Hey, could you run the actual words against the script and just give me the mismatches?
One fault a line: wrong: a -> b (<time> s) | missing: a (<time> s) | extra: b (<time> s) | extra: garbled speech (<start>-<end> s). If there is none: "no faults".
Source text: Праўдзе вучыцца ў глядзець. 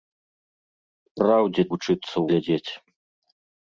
no faults